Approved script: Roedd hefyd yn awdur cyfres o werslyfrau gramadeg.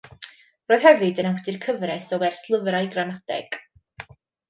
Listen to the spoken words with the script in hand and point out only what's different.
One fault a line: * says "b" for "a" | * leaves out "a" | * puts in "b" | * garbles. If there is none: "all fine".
all fine